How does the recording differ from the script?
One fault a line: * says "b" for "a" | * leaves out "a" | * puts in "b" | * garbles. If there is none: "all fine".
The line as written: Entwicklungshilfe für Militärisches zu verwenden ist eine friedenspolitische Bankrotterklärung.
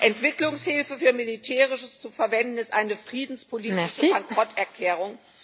all fine